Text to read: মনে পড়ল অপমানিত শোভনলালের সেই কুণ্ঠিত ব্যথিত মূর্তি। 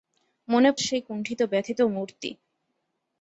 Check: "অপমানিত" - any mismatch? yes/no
yes